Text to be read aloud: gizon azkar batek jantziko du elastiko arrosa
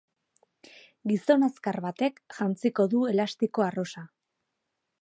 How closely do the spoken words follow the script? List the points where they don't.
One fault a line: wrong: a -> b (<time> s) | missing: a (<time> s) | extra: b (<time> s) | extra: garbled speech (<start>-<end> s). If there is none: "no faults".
no faults